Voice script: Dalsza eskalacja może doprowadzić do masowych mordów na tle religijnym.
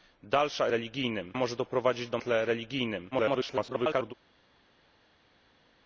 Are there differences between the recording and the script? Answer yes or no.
yes